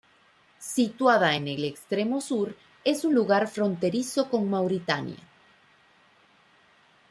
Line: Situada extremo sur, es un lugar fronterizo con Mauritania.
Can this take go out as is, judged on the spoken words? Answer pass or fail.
fail